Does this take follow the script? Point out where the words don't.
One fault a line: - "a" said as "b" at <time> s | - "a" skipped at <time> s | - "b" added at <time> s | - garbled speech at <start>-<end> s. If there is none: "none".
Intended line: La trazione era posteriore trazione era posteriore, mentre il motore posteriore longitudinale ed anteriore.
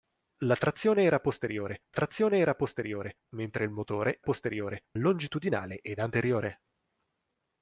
none